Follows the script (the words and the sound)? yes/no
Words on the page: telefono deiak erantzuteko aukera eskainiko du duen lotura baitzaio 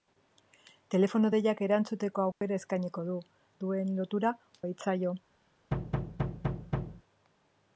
no